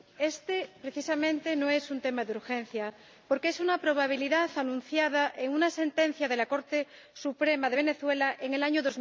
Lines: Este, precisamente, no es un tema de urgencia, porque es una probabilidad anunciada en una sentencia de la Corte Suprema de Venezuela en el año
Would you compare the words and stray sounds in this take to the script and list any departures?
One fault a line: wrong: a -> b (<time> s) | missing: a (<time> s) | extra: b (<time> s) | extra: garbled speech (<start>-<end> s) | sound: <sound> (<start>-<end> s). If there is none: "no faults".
no faults